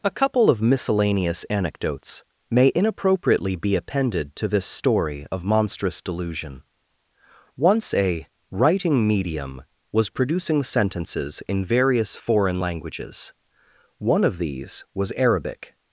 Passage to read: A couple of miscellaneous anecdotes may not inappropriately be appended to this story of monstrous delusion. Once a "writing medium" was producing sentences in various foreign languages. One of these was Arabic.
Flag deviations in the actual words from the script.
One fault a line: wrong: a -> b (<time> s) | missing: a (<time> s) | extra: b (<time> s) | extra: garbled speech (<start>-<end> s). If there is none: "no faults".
missing: not (2.7 s)